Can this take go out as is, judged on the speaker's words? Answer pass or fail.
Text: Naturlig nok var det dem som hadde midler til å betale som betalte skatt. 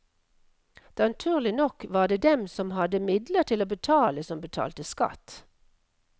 pass